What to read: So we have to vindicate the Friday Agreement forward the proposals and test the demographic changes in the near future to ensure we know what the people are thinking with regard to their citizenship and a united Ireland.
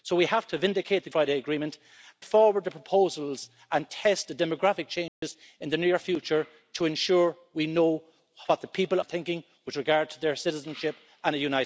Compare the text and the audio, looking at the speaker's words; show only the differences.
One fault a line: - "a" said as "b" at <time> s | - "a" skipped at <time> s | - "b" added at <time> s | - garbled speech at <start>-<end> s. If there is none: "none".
none